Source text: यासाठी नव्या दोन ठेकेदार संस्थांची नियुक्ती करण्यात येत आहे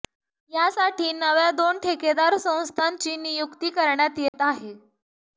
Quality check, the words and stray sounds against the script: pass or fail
fail